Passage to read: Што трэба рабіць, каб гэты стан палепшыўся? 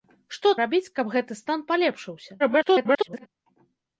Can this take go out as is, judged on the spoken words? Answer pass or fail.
fail